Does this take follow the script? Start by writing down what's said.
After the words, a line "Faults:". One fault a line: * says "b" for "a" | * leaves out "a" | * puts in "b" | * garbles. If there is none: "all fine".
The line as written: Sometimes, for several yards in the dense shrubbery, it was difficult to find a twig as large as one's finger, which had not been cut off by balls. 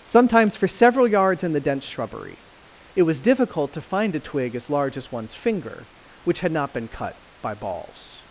Sometimes, for several yards in the dense shrubbery, it was difficult to find a twig as large as one's finger, which had not been cut by balls.
Faults:
* leaves out "off"